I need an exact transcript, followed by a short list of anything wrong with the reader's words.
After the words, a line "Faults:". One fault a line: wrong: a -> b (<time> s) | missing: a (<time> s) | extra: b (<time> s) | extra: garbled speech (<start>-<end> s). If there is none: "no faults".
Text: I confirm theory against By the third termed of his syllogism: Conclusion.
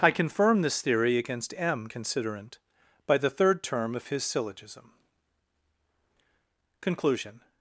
I confirm this theory against M. Considerant, by the third term of his syllogism: Conclusion.
Faults:
extra: this (0.6 s)
extra: M Considerant (1.6 s)
wrong: termed -> term (3.6 s)